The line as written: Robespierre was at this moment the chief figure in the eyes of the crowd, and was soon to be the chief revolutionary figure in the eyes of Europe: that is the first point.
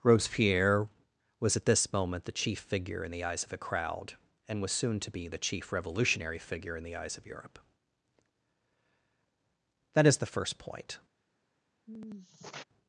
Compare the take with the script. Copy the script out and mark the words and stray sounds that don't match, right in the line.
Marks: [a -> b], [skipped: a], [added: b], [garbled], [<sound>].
Robespierre was at this moment the chief figure in the eyes of [the -> a] crowd, and was soon to be the chief revolutionary figure in the eyes of Europe: that is the first point. [sigh]